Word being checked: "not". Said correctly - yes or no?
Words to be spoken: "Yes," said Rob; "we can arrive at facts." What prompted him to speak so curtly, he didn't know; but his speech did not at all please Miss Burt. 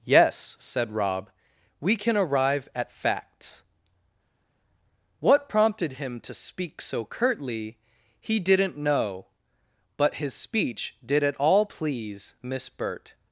no